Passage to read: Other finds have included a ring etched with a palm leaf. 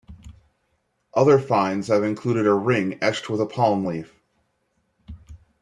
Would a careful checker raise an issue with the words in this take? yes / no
no